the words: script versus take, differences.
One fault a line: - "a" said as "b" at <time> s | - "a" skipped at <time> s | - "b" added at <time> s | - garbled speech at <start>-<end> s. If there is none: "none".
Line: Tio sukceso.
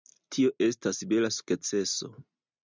- "estas bela" added at 0.7 s